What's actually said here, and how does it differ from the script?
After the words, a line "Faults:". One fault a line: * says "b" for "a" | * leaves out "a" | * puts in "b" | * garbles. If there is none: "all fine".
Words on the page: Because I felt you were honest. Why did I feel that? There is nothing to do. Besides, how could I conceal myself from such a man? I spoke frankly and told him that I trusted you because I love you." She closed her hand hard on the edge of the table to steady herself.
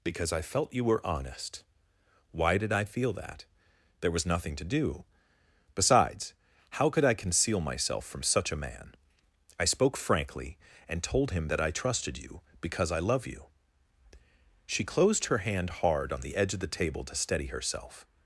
Because I felt you were honest. Why did I feel that? There was nothing to do. Besides, how could I conceal myself from such a man? I spoke frankly and told him that I trusted you because I love you." She closed her hand hard on the edge of the table to steady herself.
Faults:
* says "was" for "is"